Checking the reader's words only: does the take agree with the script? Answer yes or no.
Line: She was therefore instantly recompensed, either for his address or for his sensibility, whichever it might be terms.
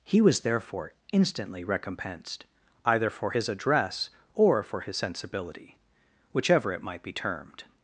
no